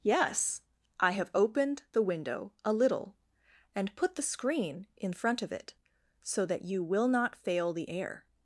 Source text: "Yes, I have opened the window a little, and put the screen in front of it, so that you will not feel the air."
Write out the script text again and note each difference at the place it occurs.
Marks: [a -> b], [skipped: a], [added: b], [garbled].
"Yes, I have opened the window a little, and put the screen in front of it, so that you will not [feel -> fail] the air."